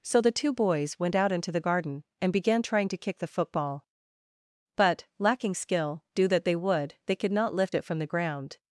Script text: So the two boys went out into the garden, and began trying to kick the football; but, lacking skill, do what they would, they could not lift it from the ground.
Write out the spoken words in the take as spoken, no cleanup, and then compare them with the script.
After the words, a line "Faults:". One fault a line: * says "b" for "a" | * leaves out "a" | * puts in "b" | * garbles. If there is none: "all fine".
So the two boys went out into the garden, and began trying to kick the football; but, lacking skill, do that they would, they could not lift it from the ground.
Faults:
* says "that" for "what"